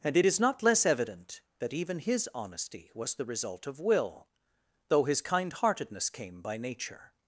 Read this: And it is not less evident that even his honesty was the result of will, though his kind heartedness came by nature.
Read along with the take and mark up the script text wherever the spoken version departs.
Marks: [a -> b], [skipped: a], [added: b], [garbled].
And it is not less evident that even his honesty was the result of will, though his kind heartedness came by nature.